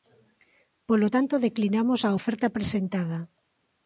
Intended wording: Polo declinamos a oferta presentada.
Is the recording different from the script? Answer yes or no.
yes